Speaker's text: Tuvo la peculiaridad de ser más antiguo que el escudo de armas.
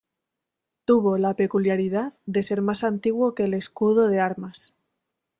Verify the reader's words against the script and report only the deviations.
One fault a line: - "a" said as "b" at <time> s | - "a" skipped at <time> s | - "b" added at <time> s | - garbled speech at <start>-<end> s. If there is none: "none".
none